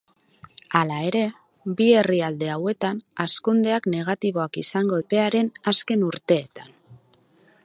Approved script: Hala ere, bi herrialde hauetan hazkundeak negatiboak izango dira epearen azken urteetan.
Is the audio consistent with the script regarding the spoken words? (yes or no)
no